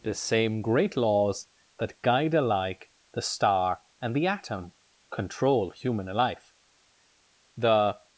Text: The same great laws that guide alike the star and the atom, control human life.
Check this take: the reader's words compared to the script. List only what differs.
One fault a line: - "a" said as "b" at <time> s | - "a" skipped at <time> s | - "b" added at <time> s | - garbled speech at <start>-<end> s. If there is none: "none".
- "The" added at 7.6 s